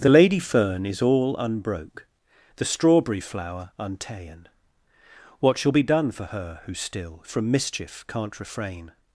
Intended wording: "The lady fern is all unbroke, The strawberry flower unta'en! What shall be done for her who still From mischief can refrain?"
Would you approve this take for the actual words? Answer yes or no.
no